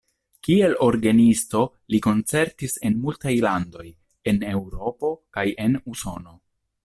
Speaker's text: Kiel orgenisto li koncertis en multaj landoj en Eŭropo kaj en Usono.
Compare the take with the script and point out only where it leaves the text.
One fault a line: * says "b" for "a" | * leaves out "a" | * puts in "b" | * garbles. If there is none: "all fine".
all fine